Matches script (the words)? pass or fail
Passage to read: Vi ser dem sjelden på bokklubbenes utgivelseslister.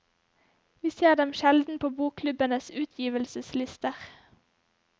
pass